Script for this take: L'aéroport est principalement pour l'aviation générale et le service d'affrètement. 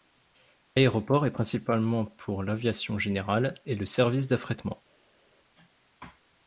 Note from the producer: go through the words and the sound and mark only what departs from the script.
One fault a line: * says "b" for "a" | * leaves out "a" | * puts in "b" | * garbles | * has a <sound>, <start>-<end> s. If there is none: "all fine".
all fine